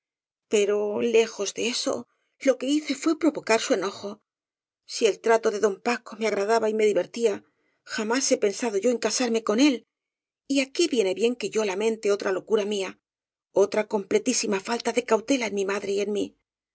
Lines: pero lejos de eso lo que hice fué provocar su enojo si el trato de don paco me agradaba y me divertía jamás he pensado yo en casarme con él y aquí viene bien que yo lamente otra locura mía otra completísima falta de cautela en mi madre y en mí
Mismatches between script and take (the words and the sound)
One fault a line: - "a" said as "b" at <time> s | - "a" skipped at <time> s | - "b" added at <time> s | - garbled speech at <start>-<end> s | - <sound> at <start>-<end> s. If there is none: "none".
none